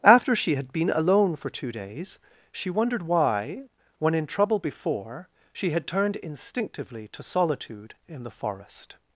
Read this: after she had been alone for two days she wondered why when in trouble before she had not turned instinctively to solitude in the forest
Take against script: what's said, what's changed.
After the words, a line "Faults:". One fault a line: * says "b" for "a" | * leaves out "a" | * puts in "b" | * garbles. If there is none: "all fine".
after she had been alone for two days she wondered why when in trouble before she had turned instinctively to solitude in the forest
Faults:
* leaves out "not"